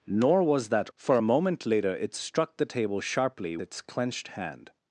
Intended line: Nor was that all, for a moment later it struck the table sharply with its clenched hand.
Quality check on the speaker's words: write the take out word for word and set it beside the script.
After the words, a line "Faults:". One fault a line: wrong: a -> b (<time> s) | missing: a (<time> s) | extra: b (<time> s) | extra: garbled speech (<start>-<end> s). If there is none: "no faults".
Nor was that for a moment later it struck the table sharply its clenched hand.
Faults:
missing: all (0.9 s)
missing: with (3.6 s)